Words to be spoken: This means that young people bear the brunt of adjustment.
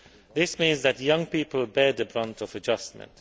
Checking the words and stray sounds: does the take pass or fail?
pass